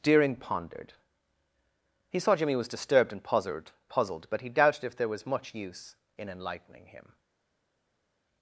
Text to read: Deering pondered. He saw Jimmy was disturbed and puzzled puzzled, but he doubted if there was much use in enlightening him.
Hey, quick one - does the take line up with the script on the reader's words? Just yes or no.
yes